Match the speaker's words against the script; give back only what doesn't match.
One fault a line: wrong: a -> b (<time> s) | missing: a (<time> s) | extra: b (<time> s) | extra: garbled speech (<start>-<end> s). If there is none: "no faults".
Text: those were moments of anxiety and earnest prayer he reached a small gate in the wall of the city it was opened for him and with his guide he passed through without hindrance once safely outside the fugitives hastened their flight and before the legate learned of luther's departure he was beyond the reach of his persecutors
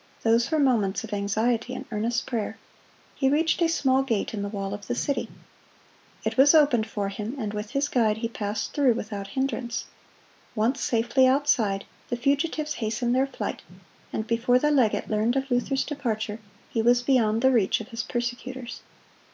no faults